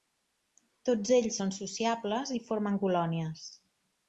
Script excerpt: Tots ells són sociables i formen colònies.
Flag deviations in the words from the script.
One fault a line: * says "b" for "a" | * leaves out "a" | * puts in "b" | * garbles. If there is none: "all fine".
all fine